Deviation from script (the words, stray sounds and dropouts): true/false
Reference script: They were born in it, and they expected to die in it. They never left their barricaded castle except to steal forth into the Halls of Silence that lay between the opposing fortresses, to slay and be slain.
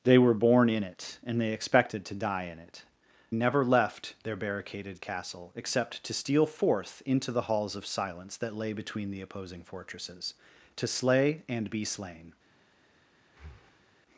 true